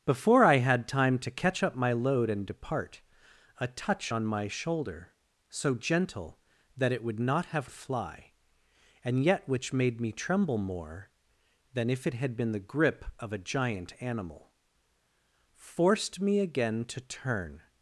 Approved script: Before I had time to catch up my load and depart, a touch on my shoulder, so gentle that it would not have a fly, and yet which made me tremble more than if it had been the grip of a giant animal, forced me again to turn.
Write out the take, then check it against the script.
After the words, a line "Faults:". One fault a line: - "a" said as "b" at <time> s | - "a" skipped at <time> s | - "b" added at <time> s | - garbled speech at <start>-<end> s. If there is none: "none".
Before I had time to catch up my load and depart, a touch on my shoulder, so gentle that it would not have a fly, and yet which made me tremble more than if it had been the grip of a giant animal, forced me again to turn.
Faults:
none